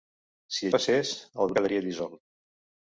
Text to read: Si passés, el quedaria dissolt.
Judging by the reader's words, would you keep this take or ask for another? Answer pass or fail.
pass